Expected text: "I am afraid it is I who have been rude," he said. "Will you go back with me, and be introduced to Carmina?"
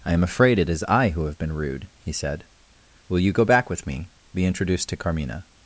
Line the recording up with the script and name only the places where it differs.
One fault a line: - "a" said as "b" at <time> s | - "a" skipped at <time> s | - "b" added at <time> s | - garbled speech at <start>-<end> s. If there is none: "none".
- "and" skipped at 4.1 s